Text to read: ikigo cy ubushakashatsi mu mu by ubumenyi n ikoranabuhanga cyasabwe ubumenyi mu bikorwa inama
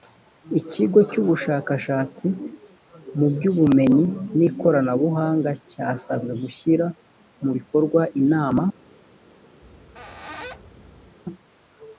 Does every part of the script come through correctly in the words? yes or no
no